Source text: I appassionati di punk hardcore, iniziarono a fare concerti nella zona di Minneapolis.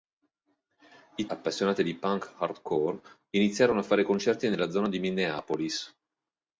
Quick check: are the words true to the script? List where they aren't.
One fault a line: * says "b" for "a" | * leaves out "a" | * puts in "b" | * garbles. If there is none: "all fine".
all fine